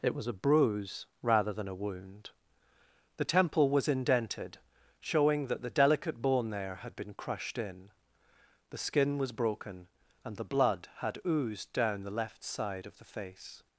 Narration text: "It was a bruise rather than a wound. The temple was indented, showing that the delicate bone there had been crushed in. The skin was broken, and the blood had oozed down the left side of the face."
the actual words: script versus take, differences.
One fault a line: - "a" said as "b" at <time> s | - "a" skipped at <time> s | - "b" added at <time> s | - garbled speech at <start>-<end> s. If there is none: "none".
none